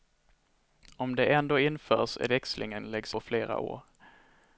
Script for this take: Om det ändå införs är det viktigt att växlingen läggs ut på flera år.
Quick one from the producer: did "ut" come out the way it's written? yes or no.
no